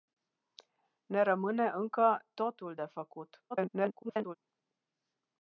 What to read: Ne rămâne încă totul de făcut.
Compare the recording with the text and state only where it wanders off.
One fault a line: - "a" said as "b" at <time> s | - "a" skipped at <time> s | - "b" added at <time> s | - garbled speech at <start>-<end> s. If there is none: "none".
- garbled speech at 3.5-4.4 s